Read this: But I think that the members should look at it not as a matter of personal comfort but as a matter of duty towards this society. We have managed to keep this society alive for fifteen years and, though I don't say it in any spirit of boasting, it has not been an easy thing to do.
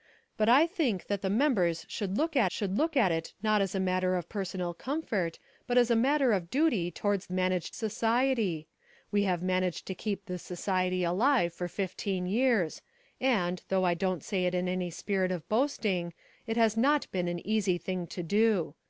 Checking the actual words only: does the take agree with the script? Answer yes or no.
no